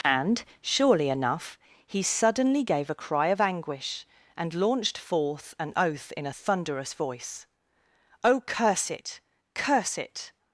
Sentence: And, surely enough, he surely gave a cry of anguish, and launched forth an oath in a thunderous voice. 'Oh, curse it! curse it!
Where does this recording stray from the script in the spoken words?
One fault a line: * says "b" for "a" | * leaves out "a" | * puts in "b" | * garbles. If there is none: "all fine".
* says "suddenly" for "surely"